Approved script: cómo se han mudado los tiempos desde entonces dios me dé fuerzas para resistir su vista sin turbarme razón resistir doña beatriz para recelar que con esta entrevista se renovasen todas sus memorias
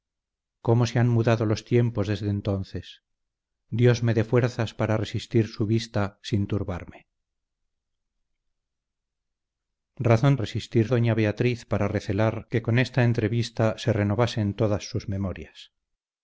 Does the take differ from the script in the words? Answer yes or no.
no